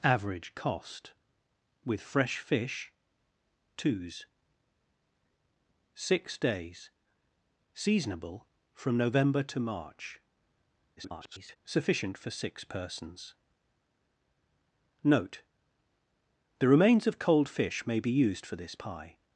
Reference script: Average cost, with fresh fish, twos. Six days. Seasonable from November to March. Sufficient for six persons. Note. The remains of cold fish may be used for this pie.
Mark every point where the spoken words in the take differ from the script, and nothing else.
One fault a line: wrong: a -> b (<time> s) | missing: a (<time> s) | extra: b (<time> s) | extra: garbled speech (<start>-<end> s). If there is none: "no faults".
extra: garbled speech (11.0-11.6 s)